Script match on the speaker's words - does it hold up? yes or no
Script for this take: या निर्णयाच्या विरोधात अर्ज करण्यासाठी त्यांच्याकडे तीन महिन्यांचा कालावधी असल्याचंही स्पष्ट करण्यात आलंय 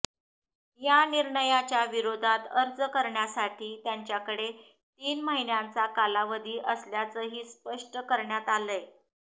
yes